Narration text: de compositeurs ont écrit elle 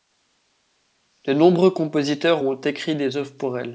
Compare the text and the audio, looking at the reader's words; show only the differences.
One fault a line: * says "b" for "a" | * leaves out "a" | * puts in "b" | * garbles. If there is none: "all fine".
* puts in "nombreux"
* puts in "des œuvres pour"